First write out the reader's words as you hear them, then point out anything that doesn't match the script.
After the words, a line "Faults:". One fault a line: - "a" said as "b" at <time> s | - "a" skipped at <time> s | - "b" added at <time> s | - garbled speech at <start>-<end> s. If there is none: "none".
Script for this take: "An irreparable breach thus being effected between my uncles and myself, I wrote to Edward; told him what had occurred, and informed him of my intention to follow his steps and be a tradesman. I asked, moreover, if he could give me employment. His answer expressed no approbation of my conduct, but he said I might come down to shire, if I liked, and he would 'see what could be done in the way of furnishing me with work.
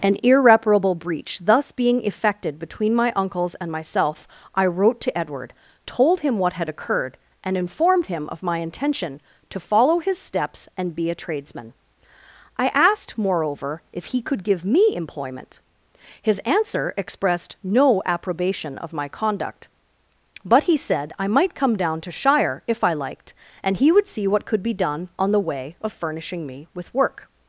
"An irreparable breach thus being effected between my uncles and myself, I wrote to Edward; told him what had occurred, and informed him of my intention to follow his steps and be a tradesman. I asked, moreover, if he could give me employment. His answer expressed no approbation of my conduct, but he said I might come down to shire, if I liked, and he would 'see what could be done on the way of furnishing me with work.
Faults:
- "in" said as "on" at 25.2 s